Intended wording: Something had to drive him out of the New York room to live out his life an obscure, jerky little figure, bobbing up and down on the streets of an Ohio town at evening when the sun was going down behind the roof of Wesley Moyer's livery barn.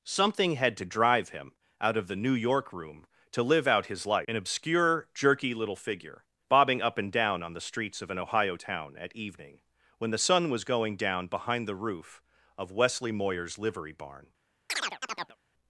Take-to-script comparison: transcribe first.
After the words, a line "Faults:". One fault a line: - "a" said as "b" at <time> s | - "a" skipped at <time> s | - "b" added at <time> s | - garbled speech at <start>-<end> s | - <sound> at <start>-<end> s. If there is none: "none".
Something had to drive him out of the New York room to live out his life an obscure, jerky little figure, bobbing up and down on the streets of an Ohio town at evening when the sun was going down behind the roof of Wesley Moyer's livery barn.
Faults:
- chirp at 14.7-15.4 s